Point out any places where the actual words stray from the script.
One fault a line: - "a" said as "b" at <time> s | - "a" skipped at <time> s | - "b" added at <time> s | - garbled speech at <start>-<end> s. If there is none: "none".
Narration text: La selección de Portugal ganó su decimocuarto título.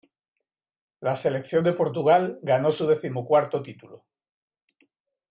none